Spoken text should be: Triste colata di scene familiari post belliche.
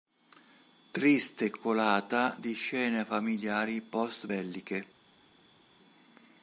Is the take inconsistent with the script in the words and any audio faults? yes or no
no